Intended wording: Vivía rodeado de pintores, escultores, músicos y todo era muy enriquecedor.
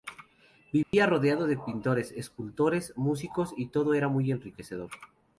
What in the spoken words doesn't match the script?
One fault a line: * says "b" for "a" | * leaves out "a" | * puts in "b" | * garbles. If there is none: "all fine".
all fine